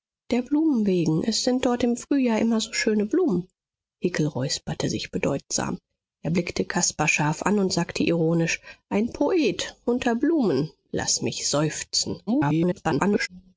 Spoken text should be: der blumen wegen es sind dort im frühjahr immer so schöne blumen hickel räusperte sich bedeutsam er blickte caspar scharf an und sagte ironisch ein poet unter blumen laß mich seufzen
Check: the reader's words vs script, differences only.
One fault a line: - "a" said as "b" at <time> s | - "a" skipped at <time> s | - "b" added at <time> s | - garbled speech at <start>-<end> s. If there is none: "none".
- garbled speech at 12.3-13.3 s